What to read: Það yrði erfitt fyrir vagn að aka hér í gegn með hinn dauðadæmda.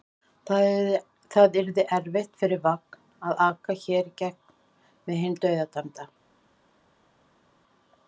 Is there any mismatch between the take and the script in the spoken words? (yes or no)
no